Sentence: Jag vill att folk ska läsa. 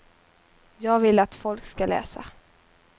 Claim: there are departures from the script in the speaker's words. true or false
false